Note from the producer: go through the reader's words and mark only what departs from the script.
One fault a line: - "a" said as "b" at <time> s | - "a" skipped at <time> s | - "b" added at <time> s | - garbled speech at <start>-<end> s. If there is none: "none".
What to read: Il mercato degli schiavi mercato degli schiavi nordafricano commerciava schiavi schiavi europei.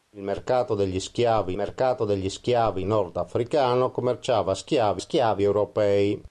none